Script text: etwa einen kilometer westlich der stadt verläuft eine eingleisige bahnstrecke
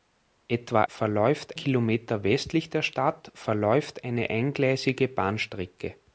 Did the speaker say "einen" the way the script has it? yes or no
no